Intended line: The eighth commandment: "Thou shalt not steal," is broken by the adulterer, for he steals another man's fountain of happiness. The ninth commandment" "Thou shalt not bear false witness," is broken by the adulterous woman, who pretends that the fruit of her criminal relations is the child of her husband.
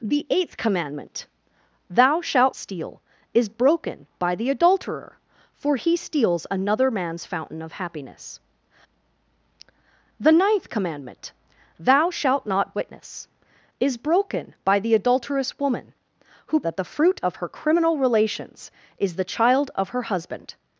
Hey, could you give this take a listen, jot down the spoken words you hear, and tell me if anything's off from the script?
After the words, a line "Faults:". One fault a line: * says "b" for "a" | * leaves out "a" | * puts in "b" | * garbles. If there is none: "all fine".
The eighth commandment: "Thou shalt steal," is broken by the adulterer, for he steals another man's fountain of happiness. The ninth commandment" "Thou shalt not witness," is broken by the adulterous woman, who that the fruit of her criminal relations is the child of her husband.
Faults:
* leaves out "not"
* leaves out "bear false"
* leaves out "pretends"